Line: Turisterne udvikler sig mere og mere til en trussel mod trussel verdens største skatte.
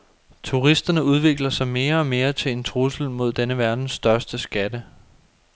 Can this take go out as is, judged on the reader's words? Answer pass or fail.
fail